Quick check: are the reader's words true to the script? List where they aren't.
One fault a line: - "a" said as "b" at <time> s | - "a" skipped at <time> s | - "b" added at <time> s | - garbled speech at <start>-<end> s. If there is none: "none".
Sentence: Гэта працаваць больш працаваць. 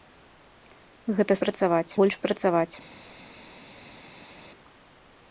none